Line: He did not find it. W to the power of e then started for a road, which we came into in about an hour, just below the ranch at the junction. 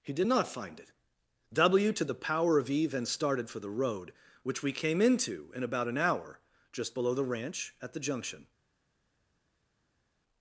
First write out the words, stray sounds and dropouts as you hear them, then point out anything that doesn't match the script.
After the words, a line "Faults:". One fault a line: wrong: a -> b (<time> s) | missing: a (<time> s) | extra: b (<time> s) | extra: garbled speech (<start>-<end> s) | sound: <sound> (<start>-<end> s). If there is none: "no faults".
He did not find it. W to the power of e then started for the road, which we came into in about an hour, just below the ranch at the junction.
Faults:
wrong: a -> the (3.6 s)